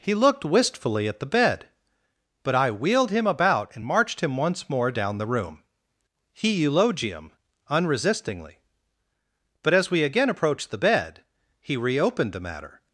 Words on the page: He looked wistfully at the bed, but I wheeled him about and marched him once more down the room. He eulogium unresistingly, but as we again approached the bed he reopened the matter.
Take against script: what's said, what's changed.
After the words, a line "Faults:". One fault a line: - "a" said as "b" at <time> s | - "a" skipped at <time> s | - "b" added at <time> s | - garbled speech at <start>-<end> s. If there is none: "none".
He looked wistfully at the bed, but I wheeled him about and marched him once more down the room. He eulogium unresistingly, but as we again approached the bed he reopened the matter.
Faults:
none